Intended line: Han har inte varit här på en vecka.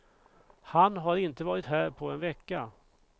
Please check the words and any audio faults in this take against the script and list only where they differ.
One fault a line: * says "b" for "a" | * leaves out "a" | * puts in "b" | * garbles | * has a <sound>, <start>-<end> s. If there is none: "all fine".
all fine